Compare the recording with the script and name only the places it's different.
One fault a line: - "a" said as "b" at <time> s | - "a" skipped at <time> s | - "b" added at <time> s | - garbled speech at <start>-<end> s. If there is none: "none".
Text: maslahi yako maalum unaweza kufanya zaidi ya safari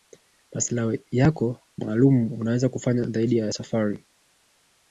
none